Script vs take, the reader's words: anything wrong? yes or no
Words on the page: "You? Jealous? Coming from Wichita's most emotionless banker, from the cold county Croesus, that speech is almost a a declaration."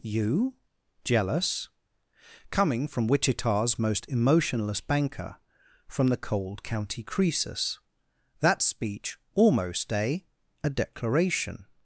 yes